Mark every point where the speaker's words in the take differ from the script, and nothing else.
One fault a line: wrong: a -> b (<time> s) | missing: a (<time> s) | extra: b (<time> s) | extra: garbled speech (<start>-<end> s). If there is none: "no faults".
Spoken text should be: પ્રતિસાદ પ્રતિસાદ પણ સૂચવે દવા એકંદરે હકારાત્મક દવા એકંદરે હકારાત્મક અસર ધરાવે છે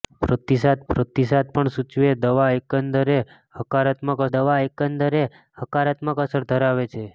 no faults